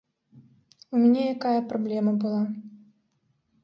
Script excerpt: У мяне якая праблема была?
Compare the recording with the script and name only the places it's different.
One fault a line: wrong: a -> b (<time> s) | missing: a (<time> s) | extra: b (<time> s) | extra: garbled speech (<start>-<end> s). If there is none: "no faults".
no faults